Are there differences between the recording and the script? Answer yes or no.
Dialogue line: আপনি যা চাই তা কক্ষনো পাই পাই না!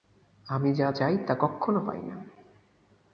yes